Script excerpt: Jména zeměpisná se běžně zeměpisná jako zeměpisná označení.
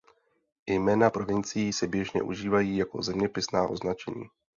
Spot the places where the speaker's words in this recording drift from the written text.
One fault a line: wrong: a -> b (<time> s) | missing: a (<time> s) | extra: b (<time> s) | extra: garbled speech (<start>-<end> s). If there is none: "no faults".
wrong: zeměpisná -> provincií (1.1 s)
wrong: zeměpisná -> užívají (2.2 s)